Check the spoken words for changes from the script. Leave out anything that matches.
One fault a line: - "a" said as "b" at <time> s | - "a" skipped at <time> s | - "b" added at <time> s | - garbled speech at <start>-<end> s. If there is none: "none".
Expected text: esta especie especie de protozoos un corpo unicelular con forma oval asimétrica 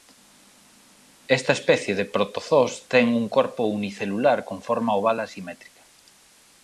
- "especie" skipped at 1.9 s
- "ten" added at 2.9 s